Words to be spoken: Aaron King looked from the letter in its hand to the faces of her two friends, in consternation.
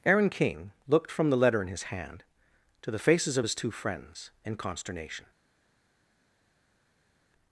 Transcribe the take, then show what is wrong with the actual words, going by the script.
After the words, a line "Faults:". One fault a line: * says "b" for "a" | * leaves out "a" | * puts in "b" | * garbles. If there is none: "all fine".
Aaron King looked from the letter in his hand to the faces of his two friends, in consternation.
Faults:
* says "his" for "its"
* says "his" for "her"